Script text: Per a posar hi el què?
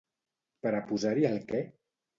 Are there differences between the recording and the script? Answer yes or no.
no